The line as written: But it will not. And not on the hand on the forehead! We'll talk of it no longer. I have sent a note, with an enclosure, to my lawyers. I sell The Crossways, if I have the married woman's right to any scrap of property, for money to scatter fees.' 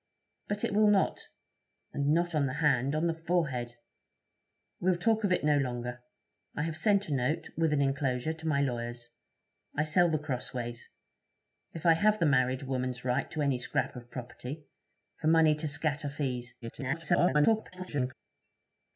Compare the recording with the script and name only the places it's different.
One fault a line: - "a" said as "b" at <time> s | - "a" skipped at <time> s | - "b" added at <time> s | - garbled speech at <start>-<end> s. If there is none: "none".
- garbled speech at 16.6-18.1 s